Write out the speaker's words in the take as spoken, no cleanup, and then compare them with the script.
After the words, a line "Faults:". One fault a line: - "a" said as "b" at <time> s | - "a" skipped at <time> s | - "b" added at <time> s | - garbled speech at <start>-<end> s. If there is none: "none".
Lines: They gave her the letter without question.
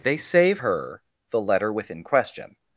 They save her the letter within question.
Faults:
- "gave" said as "save" at 0.2 s
- "without" said as "within" at 1.7 s